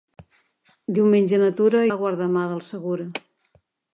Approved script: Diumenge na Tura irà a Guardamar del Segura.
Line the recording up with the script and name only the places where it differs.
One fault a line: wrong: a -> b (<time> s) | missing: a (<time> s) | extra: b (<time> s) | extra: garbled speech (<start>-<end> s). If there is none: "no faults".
missing: irà (1.8 s)